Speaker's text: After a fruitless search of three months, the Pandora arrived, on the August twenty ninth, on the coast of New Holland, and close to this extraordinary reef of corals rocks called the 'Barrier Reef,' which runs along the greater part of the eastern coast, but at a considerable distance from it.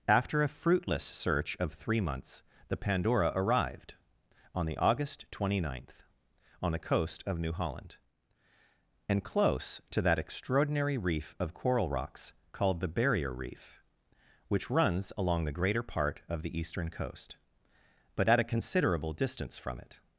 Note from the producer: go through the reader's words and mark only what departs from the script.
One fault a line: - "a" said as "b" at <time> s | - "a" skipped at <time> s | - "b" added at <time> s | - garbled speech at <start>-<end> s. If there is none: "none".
- "this" said as "that" at 10.0 s
- "corals" said as "coral" at 11.5 s